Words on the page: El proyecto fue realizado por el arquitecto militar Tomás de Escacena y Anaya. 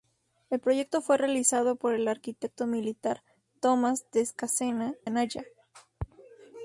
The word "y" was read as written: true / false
false